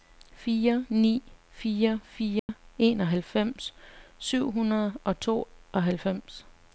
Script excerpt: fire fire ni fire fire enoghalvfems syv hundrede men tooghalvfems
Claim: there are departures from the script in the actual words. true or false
true